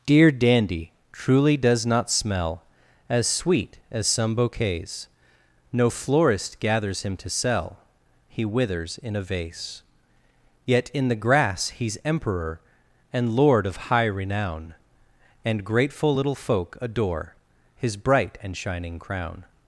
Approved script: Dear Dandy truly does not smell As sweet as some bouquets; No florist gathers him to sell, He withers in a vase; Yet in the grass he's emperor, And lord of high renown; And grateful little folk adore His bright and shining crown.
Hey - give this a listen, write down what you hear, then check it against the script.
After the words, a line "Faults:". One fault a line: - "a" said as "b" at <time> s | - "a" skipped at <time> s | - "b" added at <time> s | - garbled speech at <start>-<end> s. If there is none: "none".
Dear Dandy truly does not smell As sweet as some bouquets; No florist gathers him to sell, He withers in a vase; Yet in the grass he's emperor, And lord of high renown; And grateful little folk adore His bright and shining crown.
Faults:
none